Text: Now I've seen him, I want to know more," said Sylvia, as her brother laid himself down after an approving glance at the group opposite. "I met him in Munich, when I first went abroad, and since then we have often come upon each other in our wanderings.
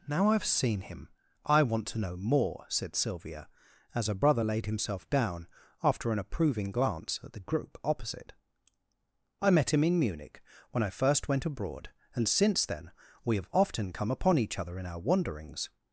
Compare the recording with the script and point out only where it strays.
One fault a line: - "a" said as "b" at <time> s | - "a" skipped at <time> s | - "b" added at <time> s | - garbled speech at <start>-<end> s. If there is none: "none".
none